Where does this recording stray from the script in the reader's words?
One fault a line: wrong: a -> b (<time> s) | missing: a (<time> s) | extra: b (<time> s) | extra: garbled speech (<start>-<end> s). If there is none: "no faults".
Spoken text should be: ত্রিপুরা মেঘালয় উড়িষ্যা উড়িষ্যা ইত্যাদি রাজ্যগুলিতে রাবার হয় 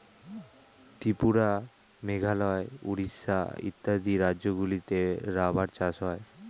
missing: উড়িষ্যা (3.4 s)
extra: চাষ (5.8 s)